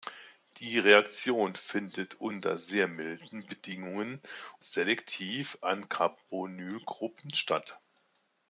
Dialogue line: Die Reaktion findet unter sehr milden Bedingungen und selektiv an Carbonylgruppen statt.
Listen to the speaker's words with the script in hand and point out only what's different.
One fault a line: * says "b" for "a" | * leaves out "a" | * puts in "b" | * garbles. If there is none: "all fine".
* leaves out "und"